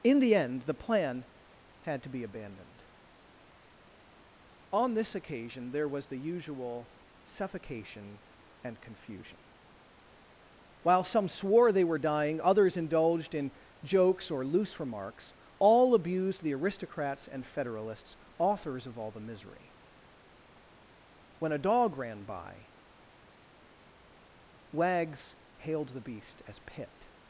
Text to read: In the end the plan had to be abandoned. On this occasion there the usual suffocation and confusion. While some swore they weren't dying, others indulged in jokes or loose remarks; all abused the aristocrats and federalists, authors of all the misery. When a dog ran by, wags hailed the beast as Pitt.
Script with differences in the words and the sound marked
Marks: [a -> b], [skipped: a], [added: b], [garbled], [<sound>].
In the end the plan had to be abandoned. On this occasion there [added: was] the usual suffocation and confusion. While some swore they [weren't -> were] dying, others indulged in jokes or loose remarks; all abused the aristocrats and federalists, authors of all the misery. When a dog ran by, wags hailed the beast as Pitt.